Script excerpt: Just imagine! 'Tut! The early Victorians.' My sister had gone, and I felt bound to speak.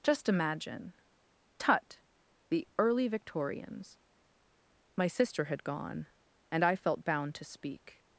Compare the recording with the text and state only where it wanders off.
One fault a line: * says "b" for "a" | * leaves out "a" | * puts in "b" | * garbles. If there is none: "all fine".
all fine